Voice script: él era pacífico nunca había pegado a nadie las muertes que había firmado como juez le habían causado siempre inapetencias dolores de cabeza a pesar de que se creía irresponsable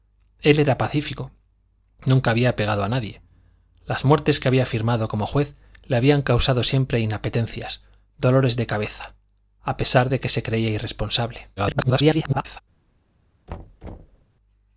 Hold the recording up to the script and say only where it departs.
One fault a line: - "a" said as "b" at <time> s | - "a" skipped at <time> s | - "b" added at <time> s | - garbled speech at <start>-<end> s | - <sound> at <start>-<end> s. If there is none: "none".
- garbled speech at 11.6-12.6 s
- thud at 13.5-14.2 s